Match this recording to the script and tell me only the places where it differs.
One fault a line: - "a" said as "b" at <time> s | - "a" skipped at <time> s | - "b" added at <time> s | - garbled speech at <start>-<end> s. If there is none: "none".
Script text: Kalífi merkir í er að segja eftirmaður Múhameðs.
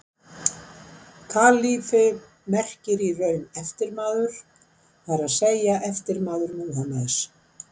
- "raun eftirmaður það" added at 3.2 s